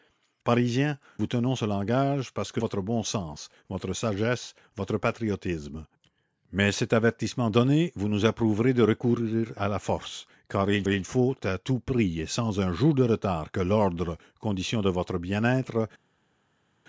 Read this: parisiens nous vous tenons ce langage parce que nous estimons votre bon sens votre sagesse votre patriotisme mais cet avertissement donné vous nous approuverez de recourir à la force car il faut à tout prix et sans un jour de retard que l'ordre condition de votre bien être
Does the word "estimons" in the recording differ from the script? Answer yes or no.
yes